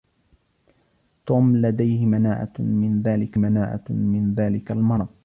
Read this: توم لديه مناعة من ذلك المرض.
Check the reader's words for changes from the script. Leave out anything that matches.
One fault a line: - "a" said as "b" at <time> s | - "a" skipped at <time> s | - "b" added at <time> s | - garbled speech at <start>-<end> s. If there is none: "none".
- "مناعة من ذلك" added at 3.4 s